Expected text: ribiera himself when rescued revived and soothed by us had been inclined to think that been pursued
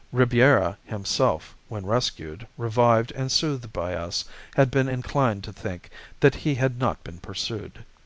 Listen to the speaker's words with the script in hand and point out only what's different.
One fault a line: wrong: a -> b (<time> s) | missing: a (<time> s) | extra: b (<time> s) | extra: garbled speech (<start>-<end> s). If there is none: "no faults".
extra: he had not (6.3 s)